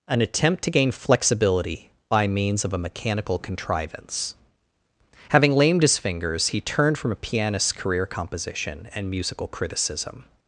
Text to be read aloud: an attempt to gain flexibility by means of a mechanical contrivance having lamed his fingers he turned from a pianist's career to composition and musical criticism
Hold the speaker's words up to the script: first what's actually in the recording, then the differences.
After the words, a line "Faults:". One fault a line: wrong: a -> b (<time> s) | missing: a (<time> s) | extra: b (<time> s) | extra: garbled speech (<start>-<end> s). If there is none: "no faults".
an attempt to gain flexibility by means of a mechanical contrivance having lamed his fingers he turned from a pianist's career composition and musical criticism
Faults:
missing: to (8.1 s)